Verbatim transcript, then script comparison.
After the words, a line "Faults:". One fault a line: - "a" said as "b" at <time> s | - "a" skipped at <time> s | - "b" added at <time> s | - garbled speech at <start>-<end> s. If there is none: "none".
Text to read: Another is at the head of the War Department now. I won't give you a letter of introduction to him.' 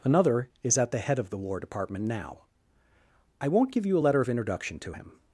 Another is at the head of the War Department now. I won't give you a letter of introduction to him.'
Faults:
none